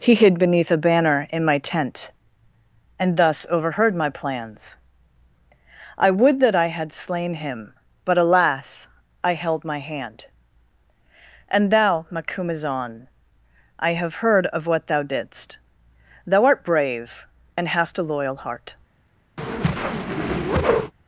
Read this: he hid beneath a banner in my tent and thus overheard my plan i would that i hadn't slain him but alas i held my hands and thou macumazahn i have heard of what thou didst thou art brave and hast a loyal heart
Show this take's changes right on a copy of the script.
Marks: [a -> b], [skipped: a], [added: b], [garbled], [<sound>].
he hid beneath a banner in my tent and thus overheard my [plan -> plans] i would that i [hadn't -> had] slain him but alas i held my [hands -> hand] and thou macumazahn i have heard of what thou didst thou art brave and hast a loyal heart [whoosh]